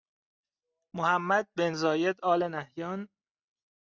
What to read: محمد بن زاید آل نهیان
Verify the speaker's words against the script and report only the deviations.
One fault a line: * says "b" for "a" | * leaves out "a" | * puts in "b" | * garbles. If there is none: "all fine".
all fine